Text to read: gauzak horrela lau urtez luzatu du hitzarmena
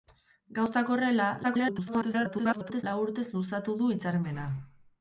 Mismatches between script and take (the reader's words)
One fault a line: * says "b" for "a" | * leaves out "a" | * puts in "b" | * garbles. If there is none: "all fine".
* garbles